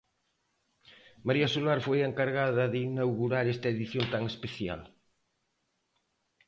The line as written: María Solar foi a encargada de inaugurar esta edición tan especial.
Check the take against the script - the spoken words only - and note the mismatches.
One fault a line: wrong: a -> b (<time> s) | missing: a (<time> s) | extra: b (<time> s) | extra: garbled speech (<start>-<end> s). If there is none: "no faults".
no faults